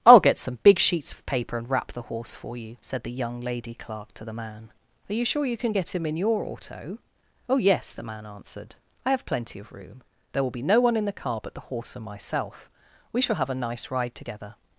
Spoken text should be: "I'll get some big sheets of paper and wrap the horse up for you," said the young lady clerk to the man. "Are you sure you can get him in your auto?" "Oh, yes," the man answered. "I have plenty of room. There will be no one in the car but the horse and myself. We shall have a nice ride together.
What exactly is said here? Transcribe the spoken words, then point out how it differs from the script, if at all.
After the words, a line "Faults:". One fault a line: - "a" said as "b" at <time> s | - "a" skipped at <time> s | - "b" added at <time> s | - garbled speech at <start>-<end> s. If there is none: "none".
"I'll get some big sheets of paper and wrap the horse for you," said the young lady clerk to the man. "Are you sure you can get him in your auto?" "Oh, yes," the man answered. "I have plenty of room. There will be no one in the car but the horse and myself. We shall have a nice ride together.
Faults:
- "up" skipped at 2.3 s